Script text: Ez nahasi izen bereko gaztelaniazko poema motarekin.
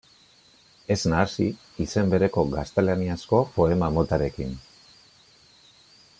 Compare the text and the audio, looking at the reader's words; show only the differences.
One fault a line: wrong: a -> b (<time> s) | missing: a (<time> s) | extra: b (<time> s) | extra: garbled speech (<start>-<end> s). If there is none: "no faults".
no faults